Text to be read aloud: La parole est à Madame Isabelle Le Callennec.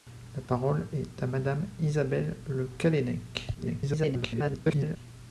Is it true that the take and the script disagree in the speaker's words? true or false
true